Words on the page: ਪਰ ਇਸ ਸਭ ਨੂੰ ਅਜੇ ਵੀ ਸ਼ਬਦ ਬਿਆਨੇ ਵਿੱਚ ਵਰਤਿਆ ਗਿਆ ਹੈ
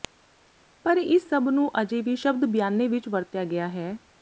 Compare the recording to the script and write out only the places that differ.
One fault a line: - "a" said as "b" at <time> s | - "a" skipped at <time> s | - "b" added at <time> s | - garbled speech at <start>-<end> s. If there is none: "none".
none